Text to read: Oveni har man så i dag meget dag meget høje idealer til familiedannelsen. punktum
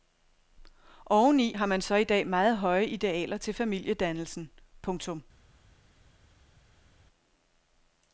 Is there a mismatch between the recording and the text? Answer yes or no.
yes